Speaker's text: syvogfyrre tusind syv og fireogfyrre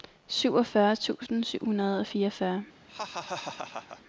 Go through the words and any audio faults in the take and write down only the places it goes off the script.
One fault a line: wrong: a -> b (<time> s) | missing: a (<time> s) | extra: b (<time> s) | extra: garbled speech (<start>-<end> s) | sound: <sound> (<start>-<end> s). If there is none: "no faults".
extra: hundrede (1.6 s)
sound: laugh (2.9-4.0 s)